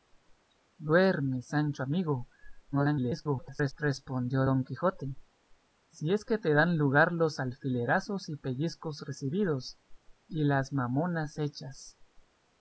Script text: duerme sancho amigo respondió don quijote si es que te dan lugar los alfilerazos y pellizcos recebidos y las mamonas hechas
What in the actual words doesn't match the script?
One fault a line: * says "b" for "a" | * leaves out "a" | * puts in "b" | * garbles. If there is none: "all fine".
* garbles